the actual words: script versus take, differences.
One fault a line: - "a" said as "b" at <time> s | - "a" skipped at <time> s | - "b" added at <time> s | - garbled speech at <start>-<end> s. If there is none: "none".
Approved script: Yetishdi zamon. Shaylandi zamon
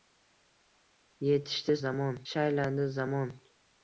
none